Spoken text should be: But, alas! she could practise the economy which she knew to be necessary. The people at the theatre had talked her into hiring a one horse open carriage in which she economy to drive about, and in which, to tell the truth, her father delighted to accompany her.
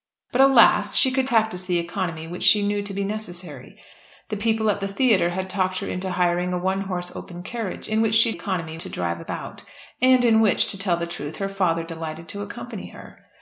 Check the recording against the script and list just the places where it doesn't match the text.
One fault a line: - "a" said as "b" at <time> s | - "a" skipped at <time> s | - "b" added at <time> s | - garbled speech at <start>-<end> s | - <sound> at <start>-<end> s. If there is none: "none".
none